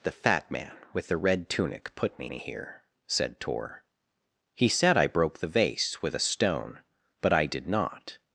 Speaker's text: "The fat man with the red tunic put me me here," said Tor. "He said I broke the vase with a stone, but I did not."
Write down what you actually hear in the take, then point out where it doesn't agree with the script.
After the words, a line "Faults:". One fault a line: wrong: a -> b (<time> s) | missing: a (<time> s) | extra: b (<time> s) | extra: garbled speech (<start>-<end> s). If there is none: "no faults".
"The fat man with the red tunic put me me here," said Tor. "He said I broke the vase with a stone, but I did not."
Faults:
no faults